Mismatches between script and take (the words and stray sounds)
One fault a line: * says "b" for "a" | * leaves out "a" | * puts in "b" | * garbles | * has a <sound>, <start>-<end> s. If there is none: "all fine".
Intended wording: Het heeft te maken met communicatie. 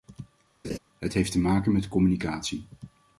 * has a laugh, 0.6-0.8 s